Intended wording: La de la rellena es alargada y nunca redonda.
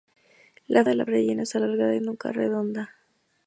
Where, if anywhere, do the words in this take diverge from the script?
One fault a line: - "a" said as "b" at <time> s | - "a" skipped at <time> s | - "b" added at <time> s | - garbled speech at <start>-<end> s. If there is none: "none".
none